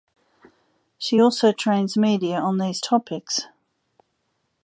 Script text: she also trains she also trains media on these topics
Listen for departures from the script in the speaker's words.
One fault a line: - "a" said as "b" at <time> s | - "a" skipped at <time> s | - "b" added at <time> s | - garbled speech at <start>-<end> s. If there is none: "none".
- "she also trains" skipped at 2.0 s